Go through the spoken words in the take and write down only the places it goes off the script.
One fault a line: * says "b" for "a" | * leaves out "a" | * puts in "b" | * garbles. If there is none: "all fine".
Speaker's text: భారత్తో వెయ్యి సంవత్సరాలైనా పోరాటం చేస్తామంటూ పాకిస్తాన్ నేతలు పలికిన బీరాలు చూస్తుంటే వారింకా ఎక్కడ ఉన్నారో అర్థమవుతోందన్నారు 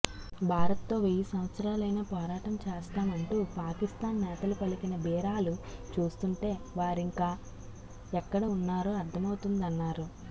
all fine